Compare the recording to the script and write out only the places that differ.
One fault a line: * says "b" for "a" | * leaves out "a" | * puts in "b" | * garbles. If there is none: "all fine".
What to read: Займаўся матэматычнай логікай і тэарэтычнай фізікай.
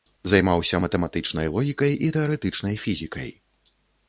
all fine